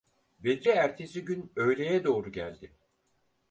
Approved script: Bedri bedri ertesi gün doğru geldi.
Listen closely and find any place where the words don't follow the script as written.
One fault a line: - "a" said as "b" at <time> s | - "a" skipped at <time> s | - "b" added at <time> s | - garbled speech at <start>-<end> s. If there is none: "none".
- "bedri" skipped at 0.7 s
- "öğleye" added at 1.6 s